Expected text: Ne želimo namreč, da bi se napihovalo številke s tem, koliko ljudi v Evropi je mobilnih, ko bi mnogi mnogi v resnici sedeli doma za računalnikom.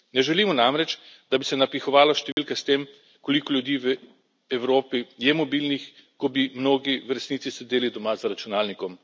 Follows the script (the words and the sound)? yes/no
no